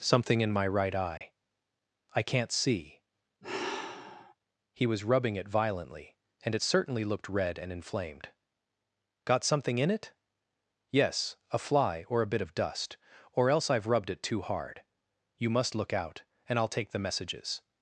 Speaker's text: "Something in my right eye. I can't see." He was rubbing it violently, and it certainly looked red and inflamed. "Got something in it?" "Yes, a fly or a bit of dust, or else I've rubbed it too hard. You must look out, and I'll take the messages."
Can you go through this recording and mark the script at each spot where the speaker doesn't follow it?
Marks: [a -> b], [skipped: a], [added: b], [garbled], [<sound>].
"Something in my right eye. [dropout] I can't see." [sigh] He was rubbing it violently, and it certainly looked red and inflamed. "Got something in it?" "Yes, a fly or a bit of dust, or else I've rubbed it too hard. You must look out, and I'll take the messages."